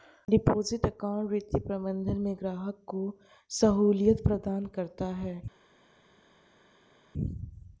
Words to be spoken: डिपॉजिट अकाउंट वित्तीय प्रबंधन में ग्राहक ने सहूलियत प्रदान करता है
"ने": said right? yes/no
no